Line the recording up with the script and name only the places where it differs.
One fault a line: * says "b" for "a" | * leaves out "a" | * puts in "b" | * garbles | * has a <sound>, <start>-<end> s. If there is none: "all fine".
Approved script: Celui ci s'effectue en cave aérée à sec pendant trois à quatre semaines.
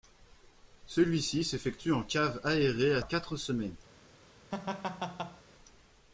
* leaves out "sec pendant trois"
* has a laugh, 4.5-5.4 s